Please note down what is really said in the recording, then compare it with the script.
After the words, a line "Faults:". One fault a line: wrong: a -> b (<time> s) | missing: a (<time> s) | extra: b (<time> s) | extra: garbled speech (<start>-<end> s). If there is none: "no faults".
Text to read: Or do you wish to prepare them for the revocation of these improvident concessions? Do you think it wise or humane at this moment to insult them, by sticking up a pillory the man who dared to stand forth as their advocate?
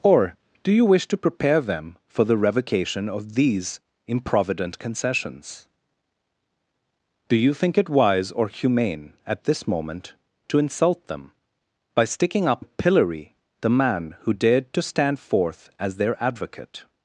Or do you wish to prepare them for the revocation of these improvident concessions? Do you think it wise or humane at this moment to insult them, by sticking up a pillory the man who dared to stand forth as their advocate?
Faults:
no faults